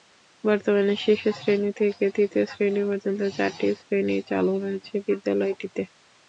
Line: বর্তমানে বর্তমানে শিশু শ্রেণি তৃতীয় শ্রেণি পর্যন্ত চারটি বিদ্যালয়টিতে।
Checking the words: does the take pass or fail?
fail